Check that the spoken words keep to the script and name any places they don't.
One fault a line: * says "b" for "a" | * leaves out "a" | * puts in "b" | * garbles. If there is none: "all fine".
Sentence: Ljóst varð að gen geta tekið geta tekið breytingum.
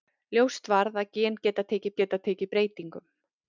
all fine